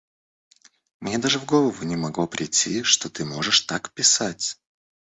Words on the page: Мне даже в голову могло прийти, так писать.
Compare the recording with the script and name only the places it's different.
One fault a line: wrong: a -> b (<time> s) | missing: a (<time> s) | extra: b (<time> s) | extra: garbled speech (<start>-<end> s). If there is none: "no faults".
extra: не (1.8 s)
extra: что ты можешь (2.8 s)